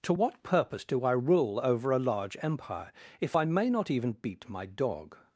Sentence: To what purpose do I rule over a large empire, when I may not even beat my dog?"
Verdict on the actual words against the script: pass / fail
fail